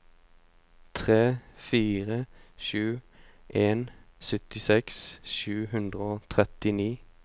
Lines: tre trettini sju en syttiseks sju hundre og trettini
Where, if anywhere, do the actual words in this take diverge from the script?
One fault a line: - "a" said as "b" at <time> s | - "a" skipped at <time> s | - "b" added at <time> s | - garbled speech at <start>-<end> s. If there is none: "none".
- "trettini" said as "fire" at 1.6 s